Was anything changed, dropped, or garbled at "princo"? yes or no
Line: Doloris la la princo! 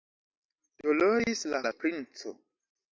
no